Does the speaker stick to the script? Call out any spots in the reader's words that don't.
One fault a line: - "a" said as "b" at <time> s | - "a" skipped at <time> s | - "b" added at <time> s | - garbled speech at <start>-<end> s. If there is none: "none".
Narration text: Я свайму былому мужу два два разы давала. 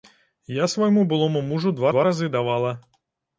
none